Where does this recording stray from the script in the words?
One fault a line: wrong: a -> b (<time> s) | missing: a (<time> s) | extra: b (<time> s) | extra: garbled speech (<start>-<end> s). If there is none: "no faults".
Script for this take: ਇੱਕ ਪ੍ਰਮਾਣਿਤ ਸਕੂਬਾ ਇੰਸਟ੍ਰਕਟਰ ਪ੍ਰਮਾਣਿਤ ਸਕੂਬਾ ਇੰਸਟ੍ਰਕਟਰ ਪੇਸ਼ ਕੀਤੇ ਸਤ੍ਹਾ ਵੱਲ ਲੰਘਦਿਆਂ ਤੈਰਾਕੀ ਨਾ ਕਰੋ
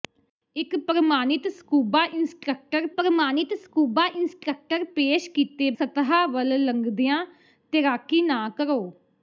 no faults